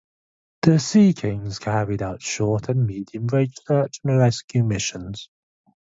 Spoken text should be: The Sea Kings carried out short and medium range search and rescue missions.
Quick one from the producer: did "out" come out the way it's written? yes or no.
yes